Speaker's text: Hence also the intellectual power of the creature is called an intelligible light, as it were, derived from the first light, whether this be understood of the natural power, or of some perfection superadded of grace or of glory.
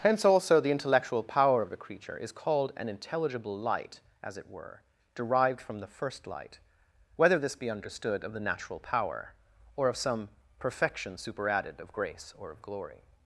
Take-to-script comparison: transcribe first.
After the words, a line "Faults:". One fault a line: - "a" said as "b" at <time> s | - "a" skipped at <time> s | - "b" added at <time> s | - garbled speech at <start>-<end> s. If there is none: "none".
Hence also the intellectual power of the creature is called an intelligible light, as it were, derived from the first light, whether this be understood of the natural power, or of some perfection superadded of grace or of glory.
Faults:
none